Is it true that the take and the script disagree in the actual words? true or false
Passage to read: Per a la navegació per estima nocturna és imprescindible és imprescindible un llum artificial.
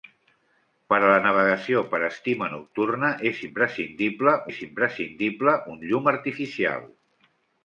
false